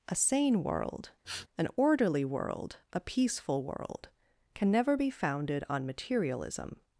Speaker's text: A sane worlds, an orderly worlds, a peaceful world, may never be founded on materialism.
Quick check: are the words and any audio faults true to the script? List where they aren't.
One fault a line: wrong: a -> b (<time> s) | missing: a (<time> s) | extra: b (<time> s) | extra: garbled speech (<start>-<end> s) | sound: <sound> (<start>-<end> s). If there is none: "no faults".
wrong: worlds -> world (0.6 s)
sound: sniff (1.2-1.5 s)
wrong: worlds -> world (2.2 s)
wrong: may -> can (4.5 s)